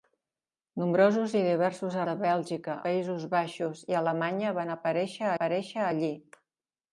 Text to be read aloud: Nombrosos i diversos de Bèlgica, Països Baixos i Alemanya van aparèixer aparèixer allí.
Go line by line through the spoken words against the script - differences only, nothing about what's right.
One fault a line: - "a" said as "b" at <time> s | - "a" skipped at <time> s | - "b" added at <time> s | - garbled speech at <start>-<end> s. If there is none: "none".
none